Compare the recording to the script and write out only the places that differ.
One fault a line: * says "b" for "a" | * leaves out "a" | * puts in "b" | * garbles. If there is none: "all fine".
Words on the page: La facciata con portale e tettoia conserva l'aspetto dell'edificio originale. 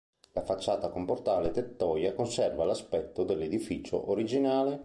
all fine